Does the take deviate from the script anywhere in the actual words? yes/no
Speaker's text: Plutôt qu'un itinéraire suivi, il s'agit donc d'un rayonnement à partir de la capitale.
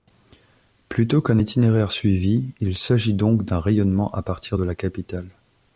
no